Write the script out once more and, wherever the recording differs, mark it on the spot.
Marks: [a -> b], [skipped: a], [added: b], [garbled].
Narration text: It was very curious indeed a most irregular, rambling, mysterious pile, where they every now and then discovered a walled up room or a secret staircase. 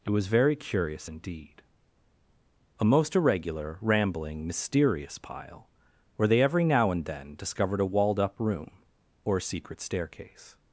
It was very curious indeed a most irregular, rambling, mysterious pile, where they every now and then discovered a walled up room or a secret staircase.